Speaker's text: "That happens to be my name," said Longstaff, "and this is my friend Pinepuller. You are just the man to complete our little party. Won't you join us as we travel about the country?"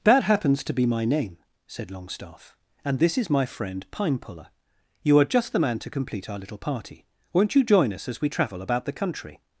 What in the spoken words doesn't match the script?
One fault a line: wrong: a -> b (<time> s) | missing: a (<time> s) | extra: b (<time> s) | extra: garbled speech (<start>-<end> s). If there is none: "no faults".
no faults